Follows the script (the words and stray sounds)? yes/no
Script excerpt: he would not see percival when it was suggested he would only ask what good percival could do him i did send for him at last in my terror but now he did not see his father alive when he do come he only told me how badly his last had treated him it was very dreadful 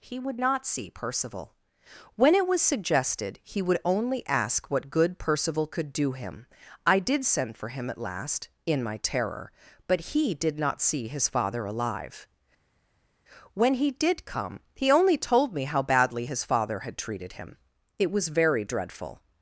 no